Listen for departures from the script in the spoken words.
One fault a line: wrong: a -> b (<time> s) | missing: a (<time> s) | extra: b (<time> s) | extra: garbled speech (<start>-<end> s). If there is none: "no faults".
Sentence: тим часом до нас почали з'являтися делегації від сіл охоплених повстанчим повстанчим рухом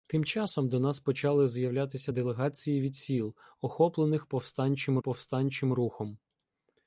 no faults